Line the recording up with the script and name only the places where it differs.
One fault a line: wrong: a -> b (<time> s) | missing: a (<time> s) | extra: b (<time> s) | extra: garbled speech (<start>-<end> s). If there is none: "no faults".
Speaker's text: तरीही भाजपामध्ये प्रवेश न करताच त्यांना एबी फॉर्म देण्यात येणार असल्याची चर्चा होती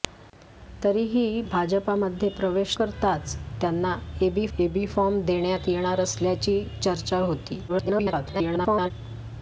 missing: न (2.8 s)
extra: एबी (4.6 s)
extra: garbled speech (7.7-8.9 s)